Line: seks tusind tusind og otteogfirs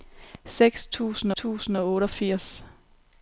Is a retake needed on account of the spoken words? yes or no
no